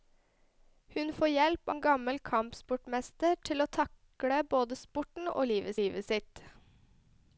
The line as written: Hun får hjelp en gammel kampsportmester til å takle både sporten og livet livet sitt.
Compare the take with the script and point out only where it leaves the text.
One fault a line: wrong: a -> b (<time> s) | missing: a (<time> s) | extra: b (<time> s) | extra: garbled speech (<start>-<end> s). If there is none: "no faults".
no faults